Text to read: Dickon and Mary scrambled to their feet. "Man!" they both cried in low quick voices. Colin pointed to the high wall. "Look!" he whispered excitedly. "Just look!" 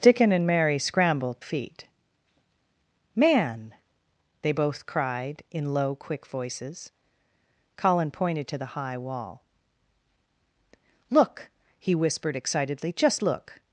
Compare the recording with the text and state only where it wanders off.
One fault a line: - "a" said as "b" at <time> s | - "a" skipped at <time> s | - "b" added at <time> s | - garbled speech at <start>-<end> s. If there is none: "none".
- "to their" skipped at 1.4 s